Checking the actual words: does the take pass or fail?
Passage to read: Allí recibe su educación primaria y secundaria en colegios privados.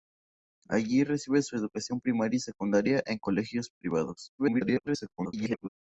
fail